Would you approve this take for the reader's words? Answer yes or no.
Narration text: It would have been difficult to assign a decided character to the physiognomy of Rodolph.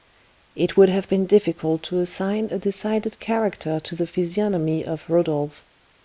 yes